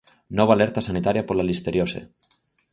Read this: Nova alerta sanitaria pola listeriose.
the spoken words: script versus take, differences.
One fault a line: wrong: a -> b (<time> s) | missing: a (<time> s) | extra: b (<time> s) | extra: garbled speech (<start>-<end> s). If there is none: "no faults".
no faults